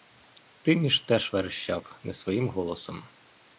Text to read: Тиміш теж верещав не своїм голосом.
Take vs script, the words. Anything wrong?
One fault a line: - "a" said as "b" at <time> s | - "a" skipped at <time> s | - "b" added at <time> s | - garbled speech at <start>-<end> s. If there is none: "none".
none